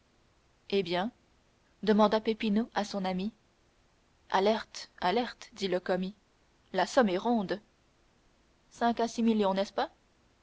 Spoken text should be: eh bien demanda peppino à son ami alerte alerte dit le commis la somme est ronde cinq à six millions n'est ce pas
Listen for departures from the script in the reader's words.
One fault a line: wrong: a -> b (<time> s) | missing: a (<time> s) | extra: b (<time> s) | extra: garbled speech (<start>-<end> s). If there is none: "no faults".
no faults